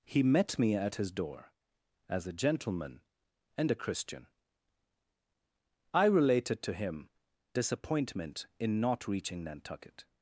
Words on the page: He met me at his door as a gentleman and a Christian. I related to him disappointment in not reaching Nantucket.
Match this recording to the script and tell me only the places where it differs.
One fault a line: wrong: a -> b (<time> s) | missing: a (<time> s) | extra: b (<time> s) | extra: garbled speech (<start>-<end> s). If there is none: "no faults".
no faults